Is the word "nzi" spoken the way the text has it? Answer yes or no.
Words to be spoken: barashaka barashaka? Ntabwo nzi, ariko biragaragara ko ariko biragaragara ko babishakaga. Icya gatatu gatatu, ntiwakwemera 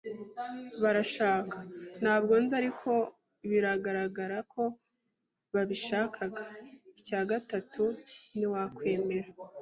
yes